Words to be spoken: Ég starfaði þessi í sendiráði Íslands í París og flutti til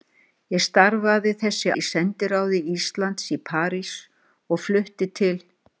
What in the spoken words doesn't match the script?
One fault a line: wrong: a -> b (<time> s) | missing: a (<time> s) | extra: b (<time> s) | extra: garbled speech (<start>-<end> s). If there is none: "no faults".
no faults